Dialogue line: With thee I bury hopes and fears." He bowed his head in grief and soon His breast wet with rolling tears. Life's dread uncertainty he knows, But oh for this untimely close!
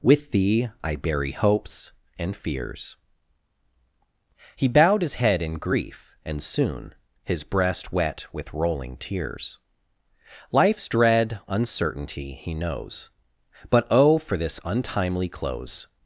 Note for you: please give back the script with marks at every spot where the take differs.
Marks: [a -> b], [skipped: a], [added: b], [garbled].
With thee I bury hopes and fears." He bowed his head in grief and soon His breast wet with rolling tears. Life's dread uncertainty he knows, But oh for this untimely close!